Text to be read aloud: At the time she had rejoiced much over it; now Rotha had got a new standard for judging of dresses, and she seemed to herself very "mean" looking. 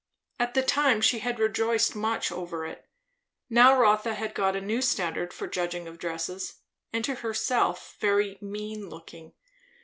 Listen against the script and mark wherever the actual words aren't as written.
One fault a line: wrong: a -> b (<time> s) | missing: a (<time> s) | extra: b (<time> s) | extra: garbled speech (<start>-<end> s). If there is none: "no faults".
missing: she seemed (7.1 s)